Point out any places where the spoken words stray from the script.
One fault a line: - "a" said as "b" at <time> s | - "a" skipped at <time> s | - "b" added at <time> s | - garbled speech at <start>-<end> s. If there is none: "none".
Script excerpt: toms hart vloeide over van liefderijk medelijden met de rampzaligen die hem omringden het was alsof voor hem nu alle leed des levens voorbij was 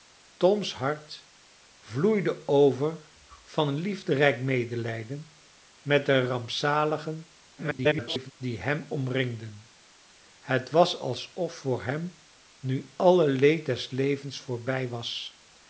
- garbled speech at 7.6-8.3 s